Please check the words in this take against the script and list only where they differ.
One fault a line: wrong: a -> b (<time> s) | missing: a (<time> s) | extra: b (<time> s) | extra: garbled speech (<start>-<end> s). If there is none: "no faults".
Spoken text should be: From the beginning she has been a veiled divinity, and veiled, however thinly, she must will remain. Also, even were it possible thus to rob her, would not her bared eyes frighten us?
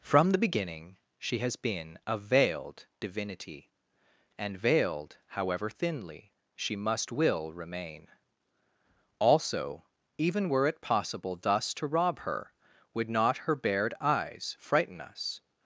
no faults